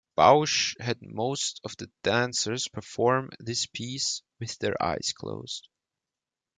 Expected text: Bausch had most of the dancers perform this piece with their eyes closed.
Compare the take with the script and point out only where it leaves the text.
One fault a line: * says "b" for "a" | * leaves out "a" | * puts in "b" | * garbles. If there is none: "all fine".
all fine